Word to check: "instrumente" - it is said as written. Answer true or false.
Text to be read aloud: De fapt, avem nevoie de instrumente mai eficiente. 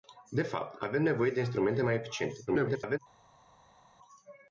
true